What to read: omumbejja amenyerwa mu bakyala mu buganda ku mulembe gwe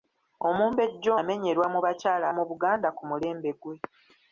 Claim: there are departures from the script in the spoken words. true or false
false